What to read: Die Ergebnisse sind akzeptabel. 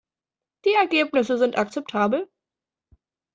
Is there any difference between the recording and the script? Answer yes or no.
no